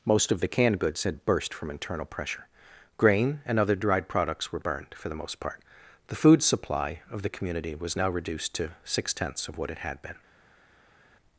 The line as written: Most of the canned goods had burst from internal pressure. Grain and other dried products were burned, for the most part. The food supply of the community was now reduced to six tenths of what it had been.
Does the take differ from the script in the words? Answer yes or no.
no